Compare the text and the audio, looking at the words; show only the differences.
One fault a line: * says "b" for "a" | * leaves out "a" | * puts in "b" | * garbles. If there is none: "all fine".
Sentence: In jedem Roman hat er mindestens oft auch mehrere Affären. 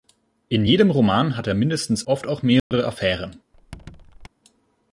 all fine